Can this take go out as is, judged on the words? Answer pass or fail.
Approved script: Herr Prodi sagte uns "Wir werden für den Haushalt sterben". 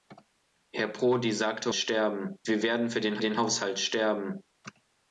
fail